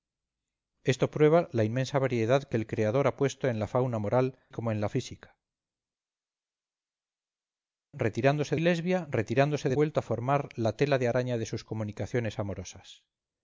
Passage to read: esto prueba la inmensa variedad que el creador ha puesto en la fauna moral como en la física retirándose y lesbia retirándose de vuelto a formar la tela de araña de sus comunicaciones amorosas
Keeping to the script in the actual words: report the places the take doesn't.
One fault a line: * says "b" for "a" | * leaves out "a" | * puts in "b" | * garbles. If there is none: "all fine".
all fine